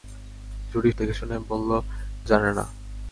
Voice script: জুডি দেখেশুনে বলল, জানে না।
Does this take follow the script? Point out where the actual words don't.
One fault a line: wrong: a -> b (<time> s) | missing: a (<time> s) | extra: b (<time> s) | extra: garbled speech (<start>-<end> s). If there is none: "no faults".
no faults